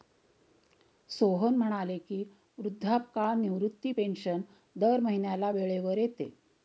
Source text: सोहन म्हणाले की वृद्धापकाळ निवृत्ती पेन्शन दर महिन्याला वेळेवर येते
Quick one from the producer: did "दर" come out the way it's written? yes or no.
yes